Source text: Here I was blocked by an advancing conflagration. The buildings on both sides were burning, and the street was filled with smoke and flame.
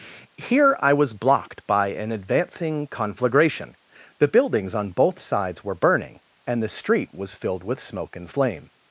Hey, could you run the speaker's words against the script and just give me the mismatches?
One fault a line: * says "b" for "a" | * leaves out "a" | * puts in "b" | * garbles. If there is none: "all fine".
all fine